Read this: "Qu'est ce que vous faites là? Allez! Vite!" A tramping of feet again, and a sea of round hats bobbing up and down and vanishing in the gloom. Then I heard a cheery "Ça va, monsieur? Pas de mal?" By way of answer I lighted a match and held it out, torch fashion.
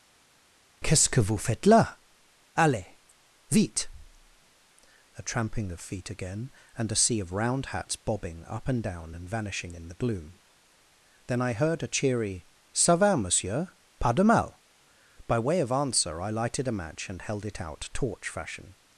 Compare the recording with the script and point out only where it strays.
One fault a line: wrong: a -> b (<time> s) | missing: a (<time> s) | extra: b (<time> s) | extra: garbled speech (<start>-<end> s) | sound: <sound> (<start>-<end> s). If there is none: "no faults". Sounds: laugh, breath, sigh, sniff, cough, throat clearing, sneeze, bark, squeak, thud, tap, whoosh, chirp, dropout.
no faults